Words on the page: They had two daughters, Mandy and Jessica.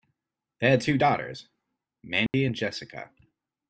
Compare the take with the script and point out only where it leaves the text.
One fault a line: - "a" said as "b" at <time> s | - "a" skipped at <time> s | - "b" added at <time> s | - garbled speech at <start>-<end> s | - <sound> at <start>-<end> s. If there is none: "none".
- dropout at 2.3-2.3 s